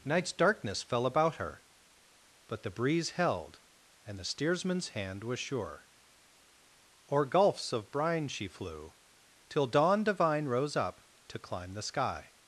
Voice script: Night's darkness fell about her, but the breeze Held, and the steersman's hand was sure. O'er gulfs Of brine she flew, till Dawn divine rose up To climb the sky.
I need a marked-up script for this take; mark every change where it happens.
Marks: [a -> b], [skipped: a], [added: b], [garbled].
Night's darkness fell about her, but the breeze Held, and the steersman's hand was sure. O'er gulfs Of brine she flew, till Dawn divine rose up To climb the sky.